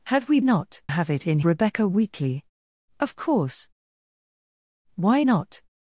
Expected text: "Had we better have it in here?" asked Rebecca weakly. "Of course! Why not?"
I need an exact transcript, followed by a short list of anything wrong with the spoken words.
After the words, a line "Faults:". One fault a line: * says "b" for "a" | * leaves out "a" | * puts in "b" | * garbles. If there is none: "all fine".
"Had we not have it in Rebecca weakly. "Of course! Why not?"
Faults:
* says "not" for "better"
* leaves out "here asked"